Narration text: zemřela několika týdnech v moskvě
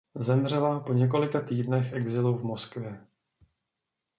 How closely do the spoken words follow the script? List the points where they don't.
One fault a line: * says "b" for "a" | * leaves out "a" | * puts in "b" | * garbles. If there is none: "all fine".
* puts in "po"
* puts in "exilu"